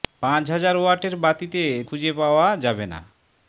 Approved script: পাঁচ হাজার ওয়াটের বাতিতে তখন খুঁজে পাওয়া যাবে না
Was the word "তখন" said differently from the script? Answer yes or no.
yes